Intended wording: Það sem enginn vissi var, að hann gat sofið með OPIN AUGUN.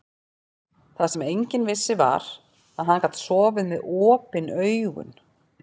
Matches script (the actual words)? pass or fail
pass